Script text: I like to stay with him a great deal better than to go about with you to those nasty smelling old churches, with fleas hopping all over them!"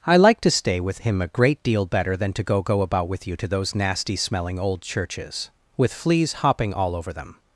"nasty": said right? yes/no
yes